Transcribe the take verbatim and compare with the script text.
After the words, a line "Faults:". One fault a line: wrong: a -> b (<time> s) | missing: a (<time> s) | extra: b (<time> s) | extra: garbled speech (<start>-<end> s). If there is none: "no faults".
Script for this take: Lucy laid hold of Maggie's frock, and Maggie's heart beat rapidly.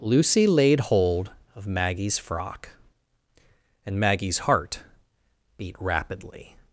Lucy laid hold of Maggie's frock, and Maggie's heart beat rapidly.
Faults:
no faults